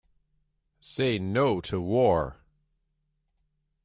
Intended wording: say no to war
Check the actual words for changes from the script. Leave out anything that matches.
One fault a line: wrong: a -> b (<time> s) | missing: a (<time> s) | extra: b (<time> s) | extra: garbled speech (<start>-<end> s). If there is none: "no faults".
no faults